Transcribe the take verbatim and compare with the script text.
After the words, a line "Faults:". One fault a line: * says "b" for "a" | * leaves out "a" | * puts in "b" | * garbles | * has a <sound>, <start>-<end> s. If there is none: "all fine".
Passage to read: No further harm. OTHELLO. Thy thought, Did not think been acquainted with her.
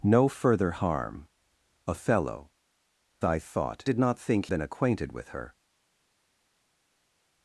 No further harm. OTHELLO. Thy thought, Did not think been acquainted with her.
Faults:
all fine